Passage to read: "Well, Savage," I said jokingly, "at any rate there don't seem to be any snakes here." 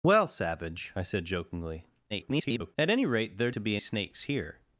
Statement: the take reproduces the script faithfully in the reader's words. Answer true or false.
false